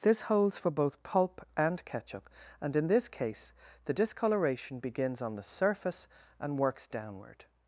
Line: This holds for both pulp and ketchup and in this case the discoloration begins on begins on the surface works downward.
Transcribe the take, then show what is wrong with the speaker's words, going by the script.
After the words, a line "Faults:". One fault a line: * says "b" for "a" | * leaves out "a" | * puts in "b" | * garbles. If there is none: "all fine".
This holds for both pulp and ketchup and in this case the discoloration begins on the surface and works downward.
Faults:
* leaves out "begins on"
* puts in "and"